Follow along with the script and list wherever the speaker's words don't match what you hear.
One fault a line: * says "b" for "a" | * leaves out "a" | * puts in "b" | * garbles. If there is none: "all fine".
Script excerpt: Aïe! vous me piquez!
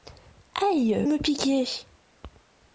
* leaves out "vous"